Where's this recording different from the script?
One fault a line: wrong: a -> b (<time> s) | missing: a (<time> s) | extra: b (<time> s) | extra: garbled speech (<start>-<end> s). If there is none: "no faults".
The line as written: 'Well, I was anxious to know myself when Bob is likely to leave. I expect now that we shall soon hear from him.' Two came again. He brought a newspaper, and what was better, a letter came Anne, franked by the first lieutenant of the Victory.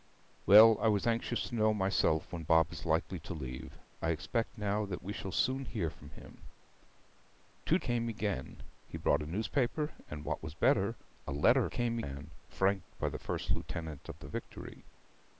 no faults